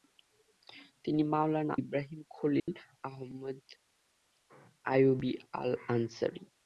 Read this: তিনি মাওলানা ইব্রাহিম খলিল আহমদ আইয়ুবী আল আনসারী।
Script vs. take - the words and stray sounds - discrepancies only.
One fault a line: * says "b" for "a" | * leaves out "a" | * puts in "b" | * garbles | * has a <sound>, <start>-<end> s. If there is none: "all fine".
* has a dropout, 2.6-2.7 s